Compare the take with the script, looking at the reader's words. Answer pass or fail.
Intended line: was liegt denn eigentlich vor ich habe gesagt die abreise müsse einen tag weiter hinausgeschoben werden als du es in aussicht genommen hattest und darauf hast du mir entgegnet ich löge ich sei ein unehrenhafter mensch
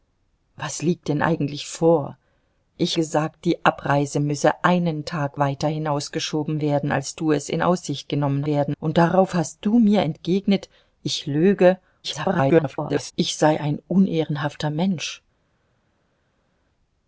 fail